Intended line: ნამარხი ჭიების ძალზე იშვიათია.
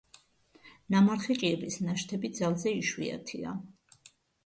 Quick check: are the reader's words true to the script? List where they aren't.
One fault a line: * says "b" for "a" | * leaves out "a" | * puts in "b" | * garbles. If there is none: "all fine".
* puts in "ნაშთები"